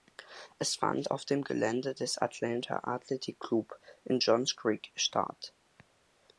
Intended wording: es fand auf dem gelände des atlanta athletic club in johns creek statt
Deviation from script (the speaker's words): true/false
false